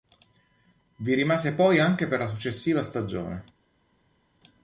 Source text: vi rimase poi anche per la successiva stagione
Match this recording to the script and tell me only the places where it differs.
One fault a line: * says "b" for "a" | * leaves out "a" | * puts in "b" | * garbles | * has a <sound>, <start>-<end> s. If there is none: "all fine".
all fine